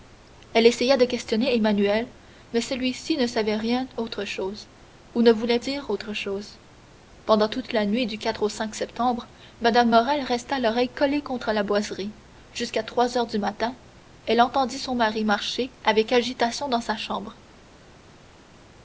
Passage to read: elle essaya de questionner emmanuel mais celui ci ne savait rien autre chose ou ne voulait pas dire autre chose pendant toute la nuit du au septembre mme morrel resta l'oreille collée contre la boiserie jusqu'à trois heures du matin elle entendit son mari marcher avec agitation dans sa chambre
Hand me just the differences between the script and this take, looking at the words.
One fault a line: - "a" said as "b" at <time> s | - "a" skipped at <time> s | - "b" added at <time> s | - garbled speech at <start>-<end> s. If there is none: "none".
- "pas" skipped at 5.6 s